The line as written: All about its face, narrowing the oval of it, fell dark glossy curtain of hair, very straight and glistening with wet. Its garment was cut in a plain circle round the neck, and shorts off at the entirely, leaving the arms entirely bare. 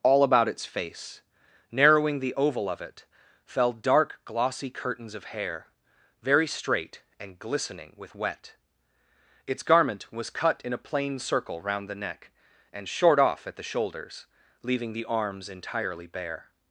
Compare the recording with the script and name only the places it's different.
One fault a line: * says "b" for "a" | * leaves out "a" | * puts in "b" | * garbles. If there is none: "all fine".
* says "curtains" for "curtain"
* says "short" for "shorts"
* says "shoulders" for "entirely"